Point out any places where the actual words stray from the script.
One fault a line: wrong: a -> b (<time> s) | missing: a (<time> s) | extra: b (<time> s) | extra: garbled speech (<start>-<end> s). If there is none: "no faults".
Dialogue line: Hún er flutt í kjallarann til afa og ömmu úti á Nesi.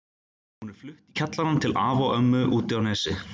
no faults